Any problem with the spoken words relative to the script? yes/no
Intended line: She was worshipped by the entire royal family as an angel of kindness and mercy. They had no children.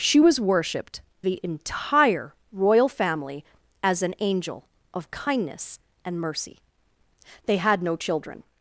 yes